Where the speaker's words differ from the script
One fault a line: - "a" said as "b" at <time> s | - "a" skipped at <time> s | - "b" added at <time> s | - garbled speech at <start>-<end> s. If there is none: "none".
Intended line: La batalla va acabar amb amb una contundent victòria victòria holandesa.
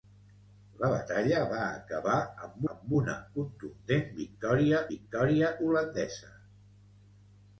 none